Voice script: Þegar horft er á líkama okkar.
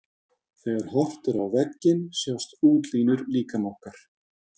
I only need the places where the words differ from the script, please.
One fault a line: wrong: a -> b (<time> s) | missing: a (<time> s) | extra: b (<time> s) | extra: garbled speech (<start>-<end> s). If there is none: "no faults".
extra: vegginn sjást útlínur (1.6 s)